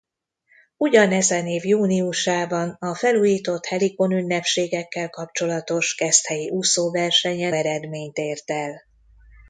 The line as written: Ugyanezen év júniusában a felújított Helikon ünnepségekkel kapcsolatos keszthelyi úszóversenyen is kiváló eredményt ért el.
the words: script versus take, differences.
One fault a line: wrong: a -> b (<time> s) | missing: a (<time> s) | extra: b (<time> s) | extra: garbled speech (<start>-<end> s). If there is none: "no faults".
missing: is kiváló (7.5 s)